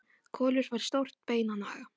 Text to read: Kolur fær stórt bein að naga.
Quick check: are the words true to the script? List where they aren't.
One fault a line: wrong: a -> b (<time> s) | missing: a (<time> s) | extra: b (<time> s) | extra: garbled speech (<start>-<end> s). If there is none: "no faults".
no faults